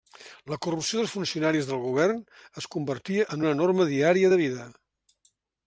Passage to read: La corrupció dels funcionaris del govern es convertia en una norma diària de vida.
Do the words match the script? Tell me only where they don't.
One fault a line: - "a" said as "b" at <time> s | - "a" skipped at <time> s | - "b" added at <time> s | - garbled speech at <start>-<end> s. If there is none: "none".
none